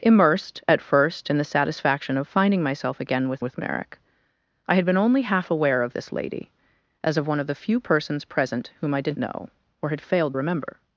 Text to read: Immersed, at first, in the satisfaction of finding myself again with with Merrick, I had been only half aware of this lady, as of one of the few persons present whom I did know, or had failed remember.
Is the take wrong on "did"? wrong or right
right